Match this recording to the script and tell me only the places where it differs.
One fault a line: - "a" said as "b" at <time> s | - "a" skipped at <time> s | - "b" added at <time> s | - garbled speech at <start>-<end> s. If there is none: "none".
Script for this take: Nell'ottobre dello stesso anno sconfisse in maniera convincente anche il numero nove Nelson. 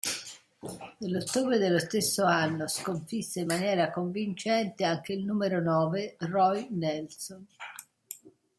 - "Roy" added at 6.2 s